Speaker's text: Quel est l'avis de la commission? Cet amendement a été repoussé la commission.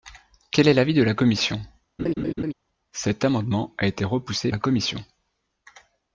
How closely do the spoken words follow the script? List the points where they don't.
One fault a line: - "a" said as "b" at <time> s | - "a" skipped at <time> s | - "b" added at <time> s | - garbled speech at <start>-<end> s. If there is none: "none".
none